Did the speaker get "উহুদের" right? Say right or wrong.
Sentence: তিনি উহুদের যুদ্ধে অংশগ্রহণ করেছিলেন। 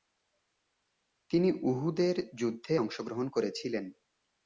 right